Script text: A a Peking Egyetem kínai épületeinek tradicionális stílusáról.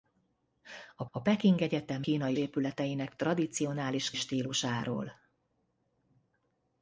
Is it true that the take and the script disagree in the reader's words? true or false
false